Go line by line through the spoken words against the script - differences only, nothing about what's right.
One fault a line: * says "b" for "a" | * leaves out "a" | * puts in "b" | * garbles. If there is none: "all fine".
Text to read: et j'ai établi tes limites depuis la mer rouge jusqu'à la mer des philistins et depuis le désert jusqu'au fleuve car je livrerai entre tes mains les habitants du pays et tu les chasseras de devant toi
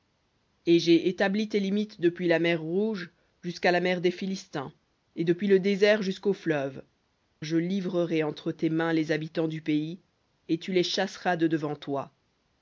* leaves out "car"